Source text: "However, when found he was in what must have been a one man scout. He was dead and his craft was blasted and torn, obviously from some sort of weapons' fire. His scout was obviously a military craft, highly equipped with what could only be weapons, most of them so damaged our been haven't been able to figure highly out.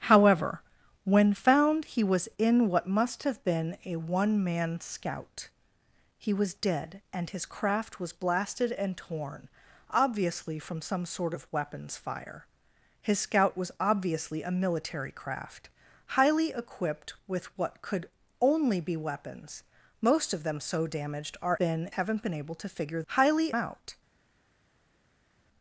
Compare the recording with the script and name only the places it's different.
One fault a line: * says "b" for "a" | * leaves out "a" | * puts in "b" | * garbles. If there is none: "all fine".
all fine